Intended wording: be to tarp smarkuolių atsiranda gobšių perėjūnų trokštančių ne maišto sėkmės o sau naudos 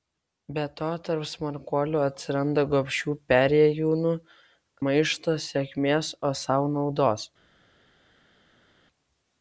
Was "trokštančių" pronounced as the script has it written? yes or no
no